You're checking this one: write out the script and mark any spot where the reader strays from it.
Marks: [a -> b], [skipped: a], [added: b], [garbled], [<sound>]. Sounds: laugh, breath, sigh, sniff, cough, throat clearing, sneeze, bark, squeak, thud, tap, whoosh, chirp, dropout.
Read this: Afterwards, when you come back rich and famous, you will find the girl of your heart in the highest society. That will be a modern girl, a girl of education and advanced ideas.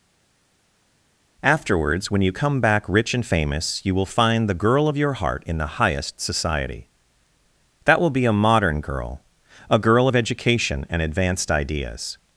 Afterwards, when you come back rich and famous, you will find the girl of your heart in the highest society. That will be a modern girl, a girl of education and advanced ideas.